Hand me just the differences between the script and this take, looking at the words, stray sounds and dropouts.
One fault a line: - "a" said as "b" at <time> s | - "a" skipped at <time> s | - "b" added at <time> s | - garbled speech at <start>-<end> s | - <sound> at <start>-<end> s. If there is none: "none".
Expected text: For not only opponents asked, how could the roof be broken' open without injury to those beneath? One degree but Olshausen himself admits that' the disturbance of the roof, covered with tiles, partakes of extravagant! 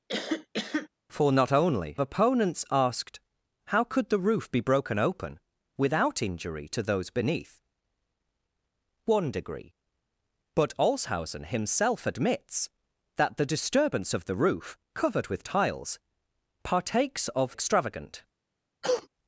- cough at 0.1-0.9 s
- cough at 18.8-19.1 s